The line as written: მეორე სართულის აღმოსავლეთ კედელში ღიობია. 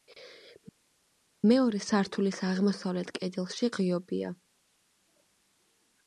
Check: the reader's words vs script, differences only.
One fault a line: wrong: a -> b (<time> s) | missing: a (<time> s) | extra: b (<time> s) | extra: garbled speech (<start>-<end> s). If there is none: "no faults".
no faults